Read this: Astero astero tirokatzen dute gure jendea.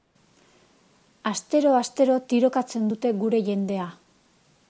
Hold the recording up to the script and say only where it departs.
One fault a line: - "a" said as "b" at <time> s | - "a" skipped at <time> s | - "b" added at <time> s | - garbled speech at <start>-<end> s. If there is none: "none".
none